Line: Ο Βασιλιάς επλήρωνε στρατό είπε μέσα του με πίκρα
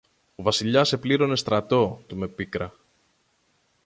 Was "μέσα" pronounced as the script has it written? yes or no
no